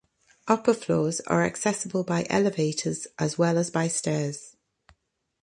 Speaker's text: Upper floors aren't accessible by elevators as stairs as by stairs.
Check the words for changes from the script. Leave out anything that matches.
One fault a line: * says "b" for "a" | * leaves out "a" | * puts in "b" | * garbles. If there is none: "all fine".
* says "are" for "aren't"
* says "well" for "stairs"